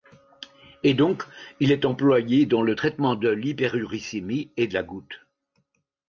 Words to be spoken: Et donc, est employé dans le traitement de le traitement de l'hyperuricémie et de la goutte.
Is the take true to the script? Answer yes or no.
no